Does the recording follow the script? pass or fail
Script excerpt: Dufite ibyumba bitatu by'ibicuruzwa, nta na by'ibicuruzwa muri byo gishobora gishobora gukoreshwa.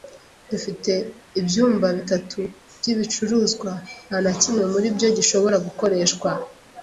fail